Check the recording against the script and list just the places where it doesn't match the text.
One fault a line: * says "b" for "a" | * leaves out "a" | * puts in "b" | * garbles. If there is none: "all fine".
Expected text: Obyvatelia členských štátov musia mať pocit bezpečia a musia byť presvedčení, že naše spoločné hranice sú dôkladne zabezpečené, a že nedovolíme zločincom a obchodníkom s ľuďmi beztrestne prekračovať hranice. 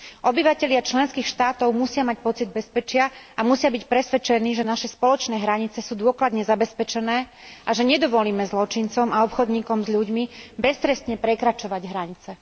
all fine